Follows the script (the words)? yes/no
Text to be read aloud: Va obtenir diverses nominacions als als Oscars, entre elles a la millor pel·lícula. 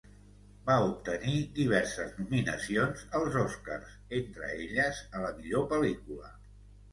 no